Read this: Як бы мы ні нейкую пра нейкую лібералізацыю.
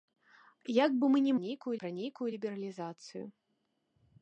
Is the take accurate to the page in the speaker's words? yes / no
yes